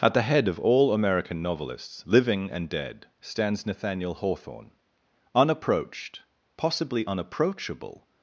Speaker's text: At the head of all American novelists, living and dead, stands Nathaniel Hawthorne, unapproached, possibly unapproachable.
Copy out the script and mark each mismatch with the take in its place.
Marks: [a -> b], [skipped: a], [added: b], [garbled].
At the head of all American novelists, living and dead, stands Nathaniel Hawthorne, unapproached, possibly unapproachable.